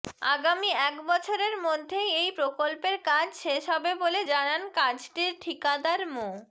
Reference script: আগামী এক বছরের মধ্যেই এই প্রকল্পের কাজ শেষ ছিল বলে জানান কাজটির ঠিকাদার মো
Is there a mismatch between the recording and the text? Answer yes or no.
yes